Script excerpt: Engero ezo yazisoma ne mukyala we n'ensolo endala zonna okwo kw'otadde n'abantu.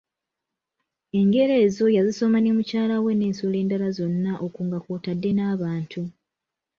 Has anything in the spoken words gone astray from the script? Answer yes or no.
yes